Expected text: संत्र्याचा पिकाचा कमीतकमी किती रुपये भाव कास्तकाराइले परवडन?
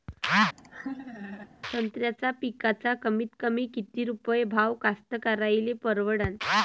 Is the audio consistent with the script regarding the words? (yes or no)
yes